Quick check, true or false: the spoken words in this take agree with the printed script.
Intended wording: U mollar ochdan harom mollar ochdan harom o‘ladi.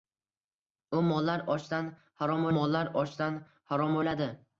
true